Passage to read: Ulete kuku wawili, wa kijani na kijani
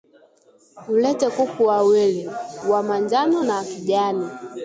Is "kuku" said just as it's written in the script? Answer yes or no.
yes